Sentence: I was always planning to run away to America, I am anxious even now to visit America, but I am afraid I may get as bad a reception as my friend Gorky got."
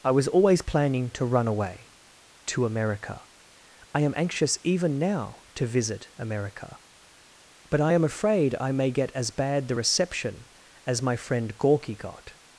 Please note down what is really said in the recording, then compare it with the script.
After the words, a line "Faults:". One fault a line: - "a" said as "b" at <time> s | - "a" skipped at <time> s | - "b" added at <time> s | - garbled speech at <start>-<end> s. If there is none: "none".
I was always planning to run away to America, I am anxious even now to visit America, but I am afraid I may get as bad the reception as my friend Gorky got."
Faults:
- "a" said as "the" at 9.7 s